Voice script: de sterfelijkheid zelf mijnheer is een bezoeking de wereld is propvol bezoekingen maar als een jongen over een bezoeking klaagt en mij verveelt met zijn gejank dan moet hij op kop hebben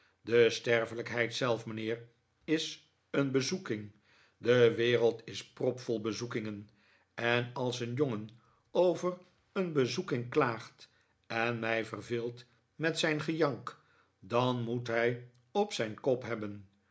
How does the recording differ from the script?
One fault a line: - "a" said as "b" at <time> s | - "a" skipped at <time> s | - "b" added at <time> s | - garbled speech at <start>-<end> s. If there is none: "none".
- "maar" said as "en" at 7.1 s
- "zijn" added at 15.7 s